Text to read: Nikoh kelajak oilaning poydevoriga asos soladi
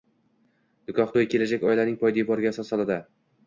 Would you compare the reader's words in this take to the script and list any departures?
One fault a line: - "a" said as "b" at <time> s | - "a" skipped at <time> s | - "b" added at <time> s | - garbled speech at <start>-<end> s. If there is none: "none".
- "to'yi" added at 1.2 s